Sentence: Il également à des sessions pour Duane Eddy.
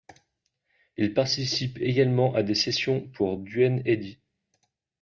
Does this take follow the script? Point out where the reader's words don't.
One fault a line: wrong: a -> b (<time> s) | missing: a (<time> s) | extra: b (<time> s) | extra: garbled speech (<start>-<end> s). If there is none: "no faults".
extra: participe (1.1 s)